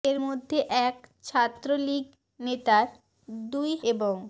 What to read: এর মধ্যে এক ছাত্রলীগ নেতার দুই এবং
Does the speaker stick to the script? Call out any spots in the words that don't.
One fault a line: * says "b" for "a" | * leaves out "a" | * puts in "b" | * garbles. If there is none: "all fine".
all fine